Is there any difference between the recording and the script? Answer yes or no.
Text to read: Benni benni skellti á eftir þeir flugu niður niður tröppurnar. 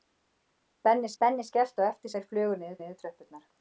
no